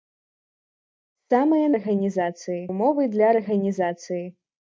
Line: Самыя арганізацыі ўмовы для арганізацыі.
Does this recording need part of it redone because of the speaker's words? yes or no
no